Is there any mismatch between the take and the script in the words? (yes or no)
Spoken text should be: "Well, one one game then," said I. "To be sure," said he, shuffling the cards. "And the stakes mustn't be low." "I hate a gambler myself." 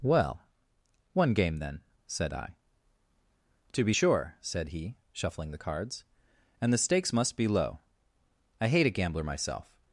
yes